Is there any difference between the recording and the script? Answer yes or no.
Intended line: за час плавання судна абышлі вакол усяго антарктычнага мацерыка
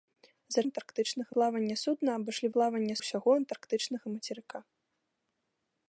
yes